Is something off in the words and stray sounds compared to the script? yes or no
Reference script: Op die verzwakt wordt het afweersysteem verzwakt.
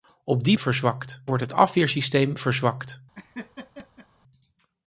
yes